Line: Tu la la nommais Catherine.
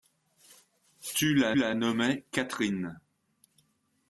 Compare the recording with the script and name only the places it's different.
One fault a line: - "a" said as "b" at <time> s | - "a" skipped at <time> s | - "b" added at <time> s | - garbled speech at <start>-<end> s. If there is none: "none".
none